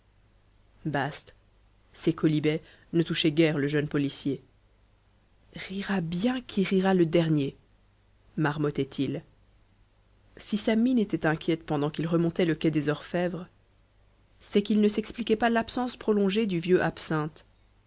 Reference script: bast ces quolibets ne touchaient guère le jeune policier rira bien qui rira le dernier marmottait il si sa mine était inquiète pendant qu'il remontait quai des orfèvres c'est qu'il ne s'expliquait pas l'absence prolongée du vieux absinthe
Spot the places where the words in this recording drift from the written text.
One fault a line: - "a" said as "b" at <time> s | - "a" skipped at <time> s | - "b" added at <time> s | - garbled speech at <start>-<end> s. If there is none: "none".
- "le" added at 12.4 s